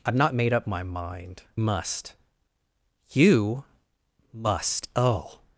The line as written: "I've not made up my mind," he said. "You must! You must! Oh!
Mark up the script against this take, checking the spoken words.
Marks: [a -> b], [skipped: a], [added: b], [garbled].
"I've not made up my mind," [skipped: he said. "You] must! You must! Oh!